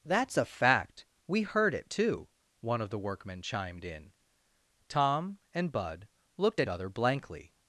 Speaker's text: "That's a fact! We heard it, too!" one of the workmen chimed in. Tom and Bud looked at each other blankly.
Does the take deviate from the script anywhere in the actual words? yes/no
yes